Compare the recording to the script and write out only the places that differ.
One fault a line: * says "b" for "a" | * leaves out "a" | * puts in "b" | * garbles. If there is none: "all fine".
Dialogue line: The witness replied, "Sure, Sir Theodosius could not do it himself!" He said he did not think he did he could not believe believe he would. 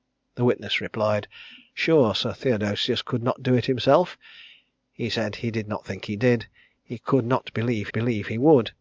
all fine